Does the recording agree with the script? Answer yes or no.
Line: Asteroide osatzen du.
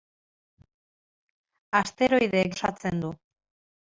yes